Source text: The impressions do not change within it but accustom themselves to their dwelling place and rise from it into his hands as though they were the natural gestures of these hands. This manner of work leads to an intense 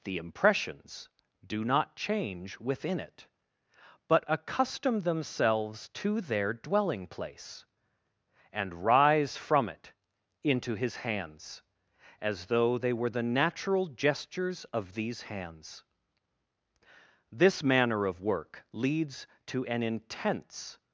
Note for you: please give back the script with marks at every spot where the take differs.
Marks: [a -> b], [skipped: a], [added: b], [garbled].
The impressions do not change within it but accustom themselves to their dwelling place and rise from it into his hands as though they were the natural gestures of these hands. This manner of work leads to an intense